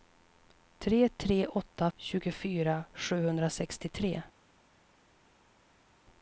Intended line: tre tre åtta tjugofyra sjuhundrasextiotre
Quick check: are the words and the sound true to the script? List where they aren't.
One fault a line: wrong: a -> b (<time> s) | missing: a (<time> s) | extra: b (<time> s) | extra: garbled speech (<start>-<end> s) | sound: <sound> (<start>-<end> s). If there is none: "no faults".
no faults